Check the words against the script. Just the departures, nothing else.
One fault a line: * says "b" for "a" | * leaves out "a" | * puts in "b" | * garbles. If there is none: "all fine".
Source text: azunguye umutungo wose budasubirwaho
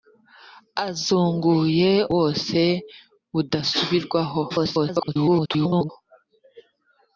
* leaves out "umutungo"
* garbles